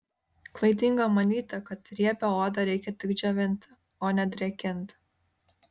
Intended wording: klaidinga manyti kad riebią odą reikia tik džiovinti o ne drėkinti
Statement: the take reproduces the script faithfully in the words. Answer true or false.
true